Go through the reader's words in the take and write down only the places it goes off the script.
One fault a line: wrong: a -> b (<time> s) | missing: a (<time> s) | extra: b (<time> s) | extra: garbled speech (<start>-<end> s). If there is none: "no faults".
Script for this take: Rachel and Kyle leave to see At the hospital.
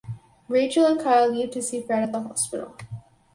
extra: Fred (1.8 s)